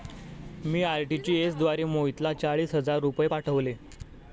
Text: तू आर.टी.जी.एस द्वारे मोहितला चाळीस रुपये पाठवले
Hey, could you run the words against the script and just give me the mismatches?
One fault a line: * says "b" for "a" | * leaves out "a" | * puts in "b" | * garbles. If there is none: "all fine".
* says "मी" for "तू"
* puts in "हजार"